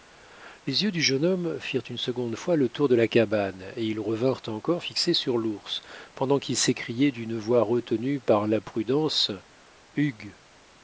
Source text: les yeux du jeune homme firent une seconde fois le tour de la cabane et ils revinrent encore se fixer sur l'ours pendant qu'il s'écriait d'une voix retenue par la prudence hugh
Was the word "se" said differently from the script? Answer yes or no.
yes